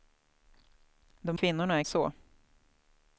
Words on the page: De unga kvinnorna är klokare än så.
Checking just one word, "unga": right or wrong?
wrong